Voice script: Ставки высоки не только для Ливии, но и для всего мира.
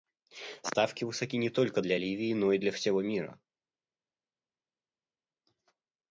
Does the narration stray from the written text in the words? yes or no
no